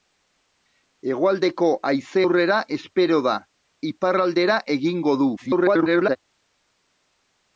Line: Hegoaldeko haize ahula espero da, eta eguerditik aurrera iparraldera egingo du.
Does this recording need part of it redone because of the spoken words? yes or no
yes